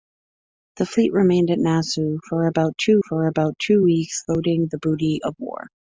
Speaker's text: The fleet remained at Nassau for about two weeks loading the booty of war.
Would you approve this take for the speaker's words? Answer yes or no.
no